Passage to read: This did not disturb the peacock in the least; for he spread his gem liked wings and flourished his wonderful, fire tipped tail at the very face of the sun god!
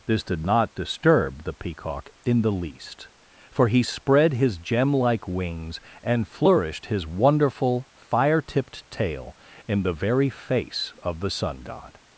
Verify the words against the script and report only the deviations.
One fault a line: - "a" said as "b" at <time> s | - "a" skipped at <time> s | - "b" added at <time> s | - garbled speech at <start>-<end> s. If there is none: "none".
- "liked" said as "like" at 4.9 s
- "at" said as "in" at 9.7 s